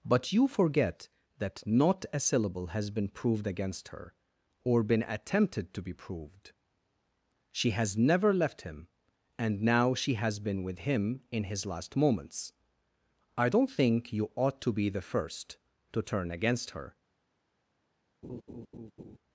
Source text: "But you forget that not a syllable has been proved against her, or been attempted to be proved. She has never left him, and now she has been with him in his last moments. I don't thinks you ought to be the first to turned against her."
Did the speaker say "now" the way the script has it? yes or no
yes